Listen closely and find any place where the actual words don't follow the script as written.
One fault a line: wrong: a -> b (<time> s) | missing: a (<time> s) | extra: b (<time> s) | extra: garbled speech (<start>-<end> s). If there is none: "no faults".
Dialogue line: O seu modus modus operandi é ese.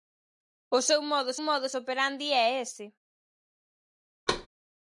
no faults